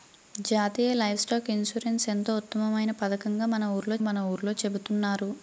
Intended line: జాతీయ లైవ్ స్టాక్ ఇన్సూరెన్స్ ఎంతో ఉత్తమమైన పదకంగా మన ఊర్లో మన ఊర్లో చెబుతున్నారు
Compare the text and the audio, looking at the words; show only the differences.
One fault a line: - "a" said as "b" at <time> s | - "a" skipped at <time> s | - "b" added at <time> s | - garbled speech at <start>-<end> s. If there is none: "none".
none